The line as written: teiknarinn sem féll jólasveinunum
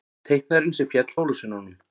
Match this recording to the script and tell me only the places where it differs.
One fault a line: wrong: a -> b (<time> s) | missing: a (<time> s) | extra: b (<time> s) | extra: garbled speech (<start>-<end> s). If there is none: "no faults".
no faults